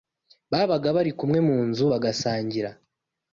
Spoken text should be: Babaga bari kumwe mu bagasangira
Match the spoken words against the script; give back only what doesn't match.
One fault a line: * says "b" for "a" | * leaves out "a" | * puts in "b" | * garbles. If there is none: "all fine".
* puts in "nzu"